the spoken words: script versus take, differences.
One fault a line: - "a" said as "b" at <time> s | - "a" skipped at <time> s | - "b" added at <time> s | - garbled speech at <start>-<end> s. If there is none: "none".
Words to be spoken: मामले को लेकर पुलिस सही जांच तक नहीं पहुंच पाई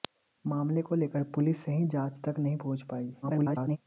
- garbled speech at 3.2-3.8 s